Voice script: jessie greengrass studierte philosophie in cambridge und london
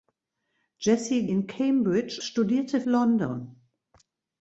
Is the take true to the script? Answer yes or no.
no